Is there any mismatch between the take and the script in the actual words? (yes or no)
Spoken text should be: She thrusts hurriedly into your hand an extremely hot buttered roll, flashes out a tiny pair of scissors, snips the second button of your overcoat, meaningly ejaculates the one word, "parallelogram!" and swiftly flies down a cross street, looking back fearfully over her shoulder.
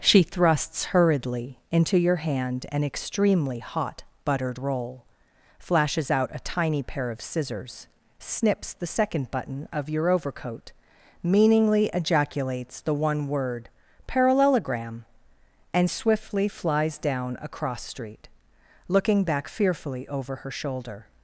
no